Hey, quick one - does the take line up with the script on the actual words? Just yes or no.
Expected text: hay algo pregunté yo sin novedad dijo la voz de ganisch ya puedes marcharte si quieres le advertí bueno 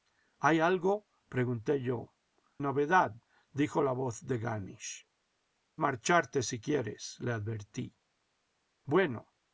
no